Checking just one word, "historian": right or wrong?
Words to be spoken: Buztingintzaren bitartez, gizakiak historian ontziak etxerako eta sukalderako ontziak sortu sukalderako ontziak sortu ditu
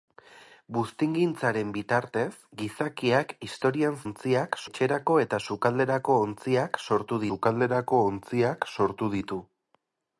right